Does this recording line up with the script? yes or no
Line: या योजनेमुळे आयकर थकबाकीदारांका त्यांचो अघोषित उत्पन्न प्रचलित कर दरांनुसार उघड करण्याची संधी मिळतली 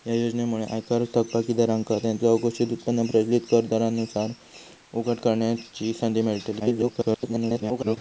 no